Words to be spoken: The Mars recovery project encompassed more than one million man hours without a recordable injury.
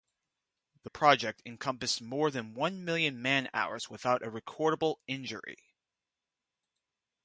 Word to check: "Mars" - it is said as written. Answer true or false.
false